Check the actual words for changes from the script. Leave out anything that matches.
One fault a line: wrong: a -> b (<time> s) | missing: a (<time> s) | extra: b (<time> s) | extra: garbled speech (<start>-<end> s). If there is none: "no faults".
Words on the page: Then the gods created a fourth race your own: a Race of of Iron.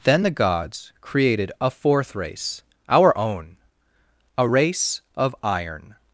wrong: your -> our (2.9 s)
missing: of (5.3 s)